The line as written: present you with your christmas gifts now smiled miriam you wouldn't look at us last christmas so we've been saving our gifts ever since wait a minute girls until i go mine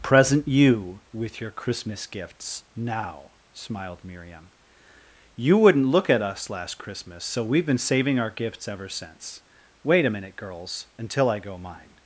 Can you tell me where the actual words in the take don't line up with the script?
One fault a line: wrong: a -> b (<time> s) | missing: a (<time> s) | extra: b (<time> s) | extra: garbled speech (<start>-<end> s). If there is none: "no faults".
no faults